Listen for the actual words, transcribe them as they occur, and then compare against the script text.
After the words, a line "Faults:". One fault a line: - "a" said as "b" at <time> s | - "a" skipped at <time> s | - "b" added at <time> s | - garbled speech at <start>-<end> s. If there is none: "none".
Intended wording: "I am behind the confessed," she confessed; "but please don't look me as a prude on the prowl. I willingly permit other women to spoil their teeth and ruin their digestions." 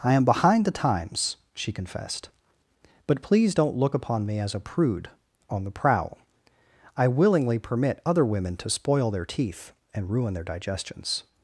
"I am behind the times," she confessed; "but please don't look upon me as a prude on the prowl. I willingly permit other women to spoil their teeth and ruin their digestions."
Faults:
- "confessed" said as "times" at 0.7 s
- "upon" added at 3.9 s